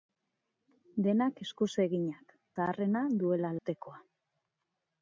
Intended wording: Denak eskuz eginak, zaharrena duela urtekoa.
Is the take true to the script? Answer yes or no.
yes